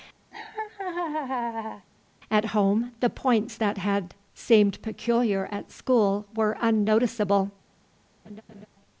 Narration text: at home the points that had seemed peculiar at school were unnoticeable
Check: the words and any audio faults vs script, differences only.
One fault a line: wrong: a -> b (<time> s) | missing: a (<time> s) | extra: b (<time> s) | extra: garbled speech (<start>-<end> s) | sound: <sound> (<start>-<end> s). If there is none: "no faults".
sound: laugh (0.3-1.9 s)
sound: laugh (8.2-8.7 s)